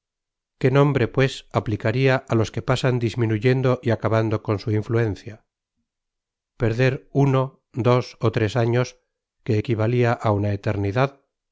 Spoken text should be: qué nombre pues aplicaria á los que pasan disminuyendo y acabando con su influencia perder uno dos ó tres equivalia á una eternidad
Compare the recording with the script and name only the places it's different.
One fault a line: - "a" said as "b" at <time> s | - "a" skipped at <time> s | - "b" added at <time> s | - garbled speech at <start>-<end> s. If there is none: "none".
- "años que" added at 8.6 s